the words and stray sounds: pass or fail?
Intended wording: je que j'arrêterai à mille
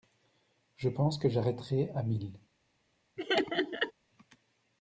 fail